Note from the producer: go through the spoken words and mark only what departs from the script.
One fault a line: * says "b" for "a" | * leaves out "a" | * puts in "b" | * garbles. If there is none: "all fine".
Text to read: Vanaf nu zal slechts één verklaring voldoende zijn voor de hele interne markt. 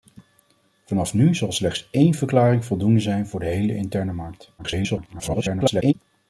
* garbles